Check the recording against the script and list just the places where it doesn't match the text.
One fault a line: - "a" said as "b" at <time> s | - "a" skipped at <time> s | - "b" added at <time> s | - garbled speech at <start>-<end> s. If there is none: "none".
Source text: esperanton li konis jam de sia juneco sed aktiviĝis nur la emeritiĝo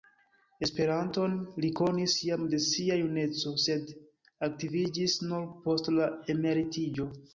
- "post" added at 5.7 s